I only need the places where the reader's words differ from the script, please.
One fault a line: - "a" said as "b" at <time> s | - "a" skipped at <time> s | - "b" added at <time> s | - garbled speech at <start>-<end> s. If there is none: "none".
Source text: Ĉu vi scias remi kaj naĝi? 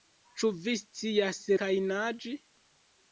- "remi" skipped at 1.4 s